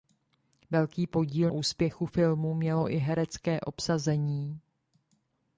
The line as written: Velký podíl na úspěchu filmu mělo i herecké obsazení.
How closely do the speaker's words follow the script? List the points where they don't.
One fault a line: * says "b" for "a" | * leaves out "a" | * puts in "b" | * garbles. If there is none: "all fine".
* leaves out "na"